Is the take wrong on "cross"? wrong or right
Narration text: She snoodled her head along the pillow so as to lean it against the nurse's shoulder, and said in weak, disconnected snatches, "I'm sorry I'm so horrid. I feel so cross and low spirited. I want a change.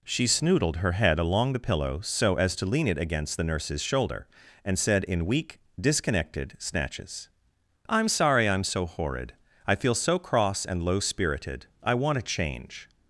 right